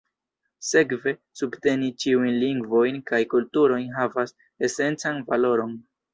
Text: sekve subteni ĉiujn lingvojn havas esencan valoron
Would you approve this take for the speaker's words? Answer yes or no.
no